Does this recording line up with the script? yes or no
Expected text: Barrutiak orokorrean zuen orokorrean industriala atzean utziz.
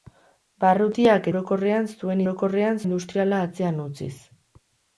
yes